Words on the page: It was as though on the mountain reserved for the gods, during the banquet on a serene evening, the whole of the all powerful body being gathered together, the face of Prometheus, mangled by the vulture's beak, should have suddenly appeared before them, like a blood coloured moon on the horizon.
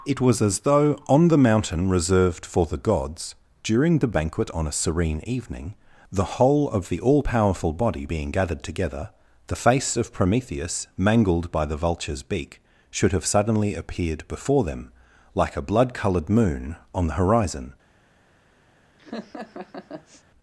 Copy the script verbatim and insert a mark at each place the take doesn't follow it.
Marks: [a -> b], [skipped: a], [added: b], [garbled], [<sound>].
It was as though on the mountain reserved for the gods, during the banquet on a serene evening, the whole of the all powerful body being gathered together, the face of Prometheus, mangled by the vulture's beak, should have suddenly appeared before them, like a blood coloured moon on the horizon. [laugh]